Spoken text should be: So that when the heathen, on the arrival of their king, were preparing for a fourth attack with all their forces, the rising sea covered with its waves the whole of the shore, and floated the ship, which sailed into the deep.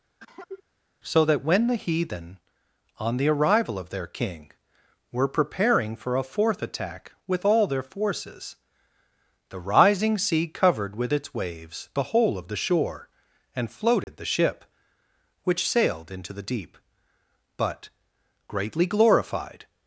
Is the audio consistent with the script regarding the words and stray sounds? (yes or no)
no